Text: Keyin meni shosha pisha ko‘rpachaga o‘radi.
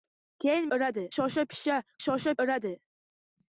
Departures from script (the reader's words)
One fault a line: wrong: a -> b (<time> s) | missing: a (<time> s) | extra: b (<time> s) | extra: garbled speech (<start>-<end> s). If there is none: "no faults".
wrong: meni -> o‘radi (0.8 s)
wrong: ko‘rpachaga -> shosha (2.0 s)